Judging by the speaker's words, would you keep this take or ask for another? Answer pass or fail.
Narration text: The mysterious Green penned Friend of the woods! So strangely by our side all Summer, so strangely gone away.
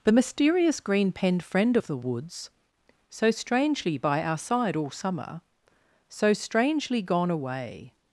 pass